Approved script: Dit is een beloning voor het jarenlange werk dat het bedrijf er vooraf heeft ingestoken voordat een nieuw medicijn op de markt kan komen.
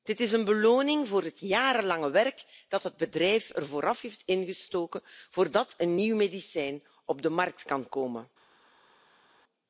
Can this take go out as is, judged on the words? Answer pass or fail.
pass